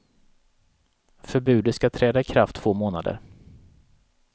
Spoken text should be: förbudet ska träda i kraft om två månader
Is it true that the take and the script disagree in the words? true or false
true